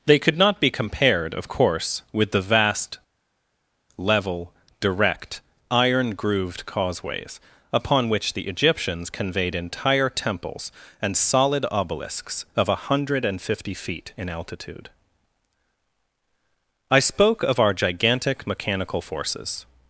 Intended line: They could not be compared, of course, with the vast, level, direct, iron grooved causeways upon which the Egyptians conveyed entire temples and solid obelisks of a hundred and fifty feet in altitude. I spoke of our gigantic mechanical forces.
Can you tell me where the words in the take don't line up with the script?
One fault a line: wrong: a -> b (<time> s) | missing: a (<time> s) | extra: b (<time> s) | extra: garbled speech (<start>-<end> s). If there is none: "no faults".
no faults